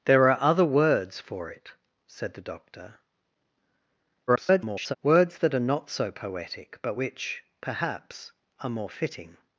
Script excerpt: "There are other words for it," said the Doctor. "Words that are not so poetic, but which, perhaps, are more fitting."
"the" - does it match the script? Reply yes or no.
yes